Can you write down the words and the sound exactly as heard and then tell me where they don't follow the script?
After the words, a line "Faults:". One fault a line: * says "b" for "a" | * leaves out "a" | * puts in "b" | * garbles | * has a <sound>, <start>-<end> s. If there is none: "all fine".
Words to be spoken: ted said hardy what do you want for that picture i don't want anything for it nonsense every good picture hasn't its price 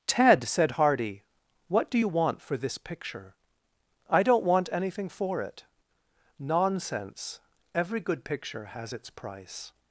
ted said hardy what do you want for this picture i don't want anything for it nonsense every good picture has its price
Faults:
* says "this" for "that"
* says "has" for "hasn't"